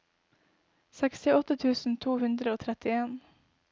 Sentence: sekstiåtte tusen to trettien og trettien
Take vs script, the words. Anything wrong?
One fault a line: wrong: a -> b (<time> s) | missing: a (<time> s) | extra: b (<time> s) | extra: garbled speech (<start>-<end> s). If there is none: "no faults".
wrong: trettien -> hundre (2.2 s)